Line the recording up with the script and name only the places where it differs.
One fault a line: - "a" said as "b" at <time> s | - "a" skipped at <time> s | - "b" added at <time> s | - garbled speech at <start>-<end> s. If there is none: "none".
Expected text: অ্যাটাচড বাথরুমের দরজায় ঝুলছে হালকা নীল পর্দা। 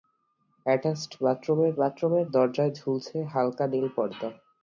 - "বাথরুমের" added at 1.8 s